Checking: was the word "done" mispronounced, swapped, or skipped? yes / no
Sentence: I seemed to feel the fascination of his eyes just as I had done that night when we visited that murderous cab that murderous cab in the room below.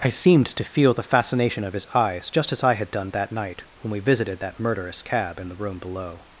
no